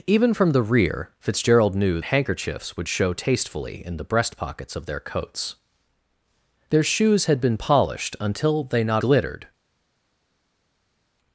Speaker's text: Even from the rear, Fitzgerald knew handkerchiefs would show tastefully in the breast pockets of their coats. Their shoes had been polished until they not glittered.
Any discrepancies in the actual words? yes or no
no